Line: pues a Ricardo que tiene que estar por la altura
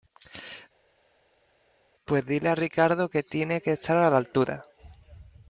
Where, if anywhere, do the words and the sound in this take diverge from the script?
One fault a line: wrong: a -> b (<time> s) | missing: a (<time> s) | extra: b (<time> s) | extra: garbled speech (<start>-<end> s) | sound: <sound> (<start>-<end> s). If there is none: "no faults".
extra: dile (2.2 s)
wrong: por -> a (4.0 s)